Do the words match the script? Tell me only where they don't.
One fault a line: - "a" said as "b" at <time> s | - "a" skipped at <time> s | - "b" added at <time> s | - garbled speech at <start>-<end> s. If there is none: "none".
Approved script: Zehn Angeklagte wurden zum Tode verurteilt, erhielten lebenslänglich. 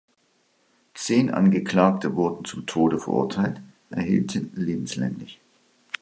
none